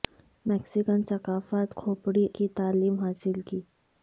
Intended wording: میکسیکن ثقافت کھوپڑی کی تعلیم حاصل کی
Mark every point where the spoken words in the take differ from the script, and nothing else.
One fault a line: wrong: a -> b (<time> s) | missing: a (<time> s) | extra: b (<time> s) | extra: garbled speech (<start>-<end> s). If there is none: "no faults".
no faults